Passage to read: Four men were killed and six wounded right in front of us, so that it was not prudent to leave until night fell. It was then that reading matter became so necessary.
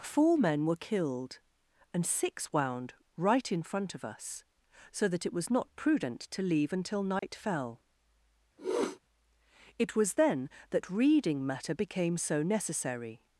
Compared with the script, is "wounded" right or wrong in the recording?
wrong